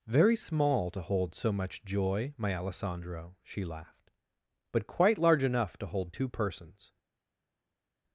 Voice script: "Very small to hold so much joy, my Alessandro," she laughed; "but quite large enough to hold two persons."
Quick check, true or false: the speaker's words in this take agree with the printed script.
true